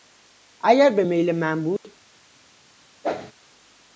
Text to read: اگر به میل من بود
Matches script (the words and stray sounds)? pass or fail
fail